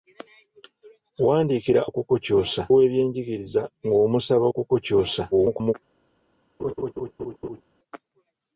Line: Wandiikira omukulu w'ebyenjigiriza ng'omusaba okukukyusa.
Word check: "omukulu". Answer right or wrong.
wrong